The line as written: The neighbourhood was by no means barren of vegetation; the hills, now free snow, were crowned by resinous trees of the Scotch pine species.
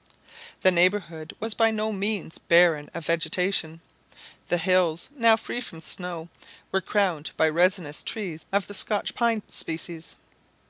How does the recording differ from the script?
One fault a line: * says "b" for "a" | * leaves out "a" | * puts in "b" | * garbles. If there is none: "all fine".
* puts in "from"